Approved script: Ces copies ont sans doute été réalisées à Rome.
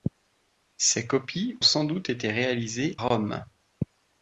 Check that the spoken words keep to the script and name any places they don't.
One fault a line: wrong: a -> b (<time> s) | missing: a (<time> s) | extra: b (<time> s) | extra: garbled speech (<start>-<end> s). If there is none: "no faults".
missing: ont (1.6 s)
missing: à (3.0 s)